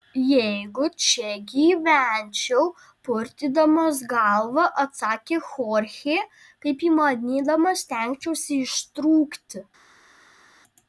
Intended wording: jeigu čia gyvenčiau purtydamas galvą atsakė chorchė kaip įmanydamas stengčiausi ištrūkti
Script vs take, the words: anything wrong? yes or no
no